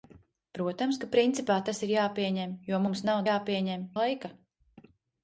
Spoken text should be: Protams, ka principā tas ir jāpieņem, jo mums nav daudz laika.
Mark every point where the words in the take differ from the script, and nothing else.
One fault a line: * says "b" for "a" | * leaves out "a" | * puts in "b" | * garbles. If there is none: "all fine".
* says "jāpieņem" for "daudz"